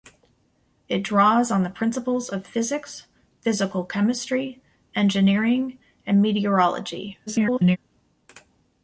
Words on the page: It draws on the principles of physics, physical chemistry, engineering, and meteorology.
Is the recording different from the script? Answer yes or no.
yes